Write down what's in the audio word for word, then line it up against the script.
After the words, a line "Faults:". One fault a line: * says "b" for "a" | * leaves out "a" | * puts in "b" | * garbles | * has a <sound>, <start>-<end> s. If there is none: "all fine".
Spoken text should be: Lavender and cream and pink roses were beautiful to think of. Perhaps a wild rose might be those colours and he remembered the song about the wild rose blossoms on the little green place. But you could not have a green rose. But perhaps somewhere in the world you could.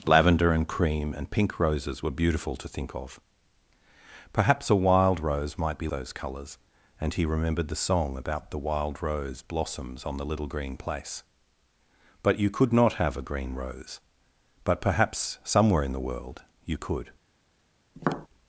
Lavender and cream and pink roses were beautiful to think of. Perhaps a wild rose might be those colours and he remembered the song about the wild rose blossoms on the little green place. But you could not have a green rose. But perhaps somewhere in the world you could.
Faults:
* has a tap, 18.0-18.3 s